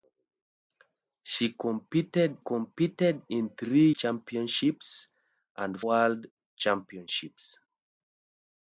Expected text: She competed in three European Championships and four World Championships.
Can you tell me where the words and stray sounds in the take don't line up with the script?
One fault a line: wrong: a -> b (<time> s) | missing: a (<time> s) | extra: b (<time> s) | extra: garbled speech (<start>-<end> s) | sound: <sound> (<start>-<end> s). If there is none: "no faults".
extra: competed (2.4 s)
missing: European (3.9 s)
missing: four (5.8 s)